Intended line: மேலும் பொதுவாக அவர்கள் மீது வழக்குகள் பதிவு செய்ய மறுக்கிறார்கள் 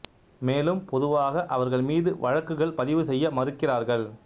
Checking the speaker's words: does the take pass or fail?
pass